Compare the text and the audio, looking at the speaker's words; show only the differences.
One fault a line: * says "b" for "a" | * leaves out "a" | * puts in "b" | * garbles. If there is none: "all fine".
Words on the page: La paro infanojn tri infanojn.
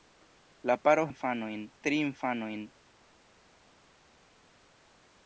all fine